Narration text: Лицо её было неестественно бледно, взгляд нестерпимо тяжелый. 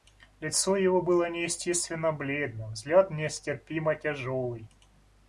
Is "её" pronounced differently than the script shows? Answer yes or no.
yes